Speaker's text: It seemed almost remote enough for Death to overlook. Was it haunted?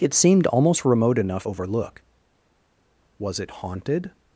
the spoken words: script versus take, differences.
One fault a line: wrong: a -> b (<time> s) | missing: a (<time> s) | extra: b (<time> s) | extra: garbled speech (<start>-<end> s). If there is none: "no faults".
missing: for Death to (1.4 s)